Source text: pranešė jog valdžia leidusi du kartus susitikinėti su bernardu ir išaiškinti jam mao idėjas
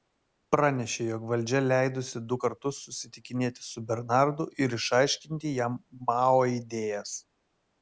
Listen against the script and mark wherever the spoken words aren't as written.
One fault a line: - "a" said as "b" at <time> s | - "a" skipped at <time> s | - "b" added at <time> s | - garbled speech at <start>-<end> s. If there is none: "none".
none